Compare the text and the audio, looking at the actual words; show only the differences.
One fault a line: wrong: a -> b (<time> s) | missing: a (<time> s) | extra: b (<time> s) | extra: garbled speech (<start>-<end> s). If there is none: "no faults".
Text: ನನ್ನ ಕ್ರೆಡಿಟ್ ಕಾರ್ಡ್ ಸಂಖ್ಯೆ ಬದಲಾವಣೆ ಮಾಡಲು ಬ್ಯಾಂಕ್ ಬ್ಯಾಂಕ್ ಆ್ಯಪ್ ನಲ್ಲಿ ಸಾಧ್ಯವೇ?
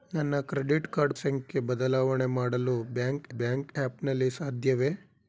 no faults